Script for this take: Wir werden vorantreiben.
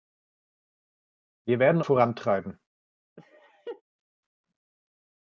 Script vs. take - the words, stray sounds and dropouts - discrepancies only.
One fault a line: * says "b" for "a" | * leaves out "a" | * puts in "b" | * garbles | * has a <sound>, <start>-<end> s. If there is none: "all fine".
* has a laugh, 3.2-3.8 s